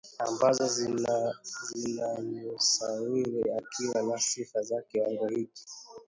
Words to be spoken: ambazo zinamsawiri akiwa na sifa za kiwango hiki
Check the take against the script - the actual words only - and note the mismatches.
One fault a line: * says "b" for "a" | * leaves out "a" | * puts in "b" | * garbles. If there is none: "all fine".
all fine